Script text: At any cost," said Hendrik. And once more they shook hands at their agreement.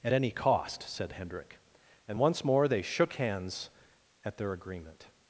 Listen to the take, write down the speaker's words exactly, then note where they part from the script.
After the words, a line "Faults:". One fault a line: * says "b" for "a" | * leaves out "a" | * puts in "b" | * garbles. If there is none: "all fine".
At any cost," said Hendrik. And once more they shook hands at their agreement.
Faults:
all fine